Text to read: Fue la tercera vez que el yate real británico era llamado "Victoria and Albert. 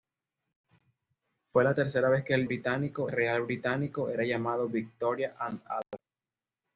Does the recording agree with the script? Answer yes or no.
no